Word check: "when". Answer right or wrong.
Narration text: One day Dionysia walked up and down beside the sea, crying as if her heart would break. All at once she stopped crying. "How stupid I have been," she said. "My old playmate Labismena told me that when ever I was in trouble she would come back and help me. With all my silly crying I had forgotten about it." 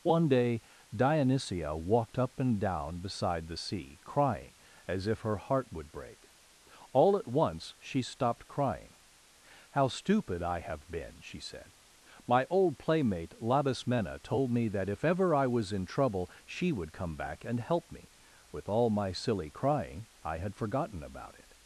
wrong